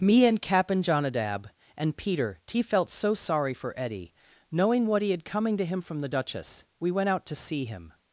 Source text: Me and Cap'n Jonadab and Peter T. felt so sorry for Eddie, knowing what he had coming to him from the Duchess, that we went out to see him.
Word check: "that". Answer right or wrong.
wrong